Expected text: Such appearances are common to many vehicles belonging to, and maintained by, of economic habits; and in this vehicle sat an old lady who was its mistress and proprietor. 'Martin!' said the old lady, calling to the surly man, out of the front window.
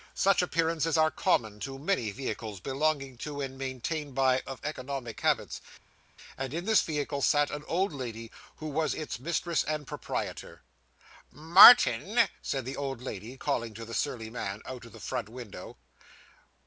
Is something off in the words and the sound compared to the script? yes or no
no